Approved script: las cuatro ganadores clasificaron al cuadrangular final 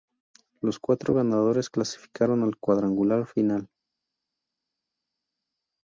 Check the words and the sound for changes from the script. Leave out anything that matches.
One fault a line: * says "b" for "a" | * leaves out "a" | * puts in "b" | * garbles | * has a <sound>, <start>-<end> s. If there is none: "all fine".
* says "los" for "las"